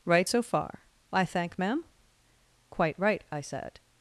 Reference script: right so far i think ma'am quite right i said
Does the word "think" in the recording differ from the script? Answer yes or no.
yes